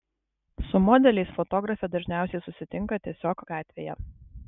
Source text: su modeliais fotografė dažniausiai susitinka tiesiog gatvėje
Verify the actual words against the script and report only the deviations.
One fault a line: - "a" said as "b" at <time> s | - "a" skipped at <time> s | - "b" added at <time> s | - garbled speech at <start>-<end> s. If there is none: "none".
none